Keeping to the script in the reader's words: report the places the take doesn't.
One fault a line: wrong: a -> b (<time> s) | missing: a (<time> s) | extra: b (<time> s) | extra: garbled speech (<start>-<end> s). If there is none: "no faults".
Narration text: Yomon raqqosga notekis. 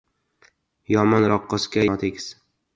no faults